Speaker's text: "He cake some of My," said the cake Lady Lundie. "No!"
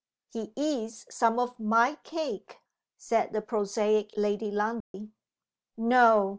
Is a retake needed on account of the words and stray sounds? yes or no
yes